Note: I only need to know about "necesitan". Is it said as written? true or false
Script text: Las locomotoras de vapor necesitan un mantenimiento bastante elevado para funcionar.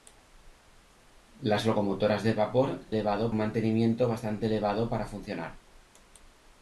false